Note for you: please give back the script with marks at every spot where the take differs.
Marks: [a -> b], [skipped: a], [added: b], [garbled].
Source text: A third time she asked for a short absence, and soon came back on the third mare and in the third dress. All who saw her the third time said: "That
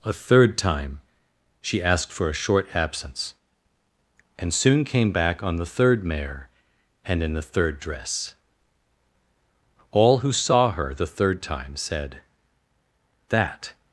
A third time she asked for a short absence, and soon came back on the third mare and in the third dress. All who saw her the third time said: "That